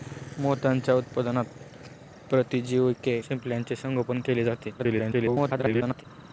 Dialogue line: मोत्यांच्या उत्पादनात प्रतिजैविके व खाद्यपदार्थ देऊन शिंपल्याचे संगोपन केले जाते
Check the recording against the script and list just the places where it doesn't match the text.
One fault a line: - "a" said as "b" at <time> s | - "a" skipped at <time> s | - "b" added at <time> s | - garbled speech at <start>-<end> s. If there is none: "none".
- "व खाद्यपदार्थ देऊन" skipped at 3.2 s
- garbled speech at 4.8-6.0 s